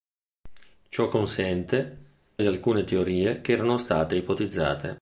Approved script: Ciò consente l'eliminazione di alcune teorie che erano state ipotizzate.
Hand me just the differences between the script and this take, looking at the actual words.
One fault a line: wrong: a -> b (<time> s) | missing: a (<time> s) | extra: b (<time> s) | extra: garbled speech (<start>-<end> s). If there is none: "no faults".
missing: l'eliminazione (2.0 s)